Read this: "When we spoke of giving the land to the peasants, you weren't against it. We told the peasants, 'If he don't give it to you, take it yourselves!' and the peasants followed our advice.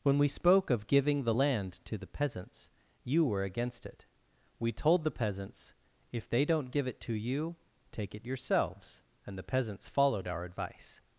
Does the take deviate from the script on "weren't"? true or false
true